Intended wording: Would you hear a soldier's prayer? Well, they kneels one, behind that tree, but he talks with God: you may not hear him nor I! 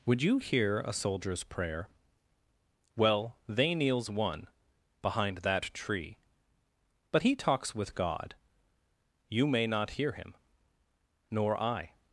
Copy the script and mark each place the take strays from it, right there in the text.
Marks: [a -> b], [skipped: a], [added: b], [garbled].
Would you hear a soldier's prayer? Well, they kneels one, behind that tree, but he talks with God: you may not hear him nor I!